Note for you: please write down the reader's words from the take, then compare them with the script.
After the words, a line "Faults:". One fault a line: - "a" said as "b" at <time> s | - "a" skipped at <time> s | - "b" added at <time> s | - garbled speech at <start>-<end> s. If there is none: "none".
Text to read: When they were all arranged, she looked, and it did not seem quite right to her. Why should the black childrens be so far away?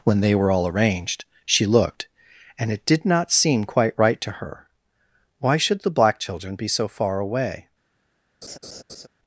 When they were all arranged, she looked, and it did not seem quite right to her. Why should the black children be so far away?
Faults:
- "childrens" said as "children" at 6.2 s